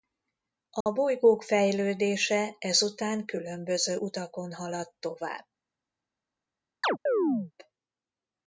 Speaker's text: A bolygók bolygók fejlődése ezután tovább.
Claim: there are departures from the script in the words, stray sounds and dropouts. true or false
true